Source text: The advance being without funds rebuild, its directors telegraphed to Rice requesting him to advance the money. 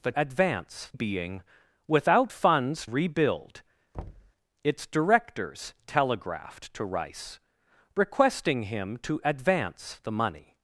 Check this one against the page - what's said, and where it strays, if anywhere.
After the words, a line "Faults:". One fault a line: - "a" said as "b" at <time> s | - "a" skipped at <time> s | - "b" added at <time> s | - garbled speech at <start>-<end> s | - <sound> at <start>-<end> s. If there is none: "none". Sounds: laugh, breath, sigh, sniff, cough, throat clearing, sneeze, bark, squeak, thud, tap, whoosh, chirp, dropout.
The advance being without funds rebuild, its directors telegraphed to Rice requesting him to advance the money.
Faults:
- thud at 3.9-4.3 s